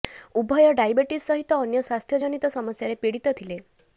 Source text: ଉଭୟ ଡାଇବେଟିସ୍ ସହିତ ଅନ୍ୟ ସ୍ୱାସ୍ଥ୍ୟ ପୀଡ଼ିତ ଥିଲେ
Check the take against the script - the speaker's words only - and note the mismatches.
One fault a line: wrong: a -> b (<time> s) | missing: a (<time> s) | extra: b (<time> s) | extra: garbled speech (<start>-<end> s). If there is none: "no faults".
extra: ଜନିତ ସମସ୍ୟାରେ (2.2 s)